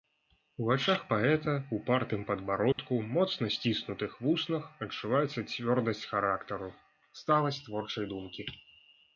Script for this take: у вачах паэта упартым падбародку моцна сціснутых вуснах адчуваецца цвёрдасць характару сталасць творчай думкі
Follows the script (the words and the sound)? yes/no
no